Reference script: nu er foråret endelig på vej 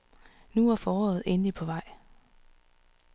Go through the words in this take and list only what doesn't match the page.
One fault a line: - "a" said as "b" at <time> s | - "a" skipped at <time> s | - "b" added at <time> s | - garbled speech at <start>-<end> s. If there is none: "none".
none